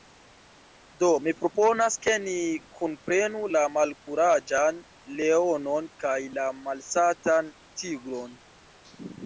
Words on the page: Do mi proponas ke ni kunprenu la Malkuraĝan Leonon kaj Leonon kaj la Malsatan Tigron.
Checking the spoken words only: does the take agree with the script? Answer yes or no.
no